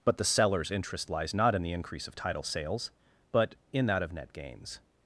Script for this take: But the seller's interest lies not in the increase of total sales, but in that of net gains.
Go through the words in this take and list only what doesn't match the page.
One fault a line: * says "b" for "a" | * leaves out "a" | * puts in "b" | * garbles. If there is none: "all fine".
* says "title" for "total"